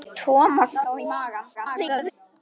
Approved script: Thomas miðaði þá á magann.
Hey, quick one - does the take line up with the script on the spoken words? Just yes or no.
no